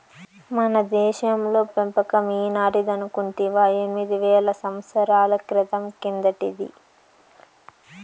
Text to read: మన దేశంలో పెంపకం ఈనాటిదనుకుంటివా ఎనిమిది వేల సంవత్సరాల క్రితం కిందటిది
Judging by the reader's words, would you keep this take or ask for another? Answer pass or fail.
pass